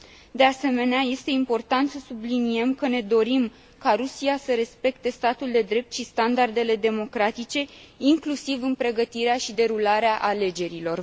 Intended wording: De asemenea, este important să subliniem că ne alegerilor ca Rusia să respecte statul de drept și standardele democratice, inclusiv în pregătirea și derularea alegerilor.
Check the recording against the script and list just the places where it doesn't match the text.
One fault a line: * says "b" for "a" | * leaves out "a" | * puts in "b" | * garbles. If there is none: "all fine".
* says "dorim" for "alegerilor"